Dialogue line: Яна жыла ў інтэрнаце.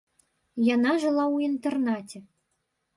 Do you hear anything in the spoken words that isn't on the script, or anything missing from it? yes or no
no